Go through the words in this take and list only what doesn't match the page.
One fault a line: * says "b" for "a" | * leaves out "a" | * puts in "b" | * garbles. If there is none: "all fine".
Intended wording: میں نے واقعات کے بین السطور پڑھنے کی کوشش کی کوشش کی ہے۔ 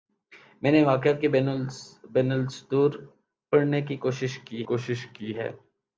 all fine